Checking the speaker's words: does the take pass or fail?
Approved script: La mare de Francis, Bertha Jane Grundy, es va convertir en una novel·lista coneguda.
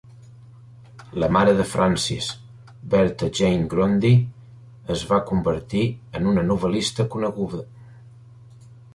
pass